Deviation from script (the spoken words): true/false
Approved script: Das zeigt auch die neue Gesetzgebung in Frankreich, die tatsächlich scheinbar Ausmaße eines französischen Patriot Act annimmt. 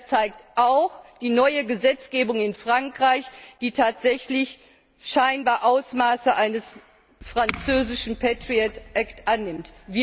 false